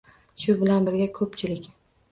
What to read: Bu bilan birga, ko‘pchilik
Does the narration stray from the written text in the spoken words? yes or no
yes